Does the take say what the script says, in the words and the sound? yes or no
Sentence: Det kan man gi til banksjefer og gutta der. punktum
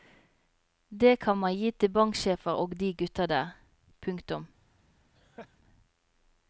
no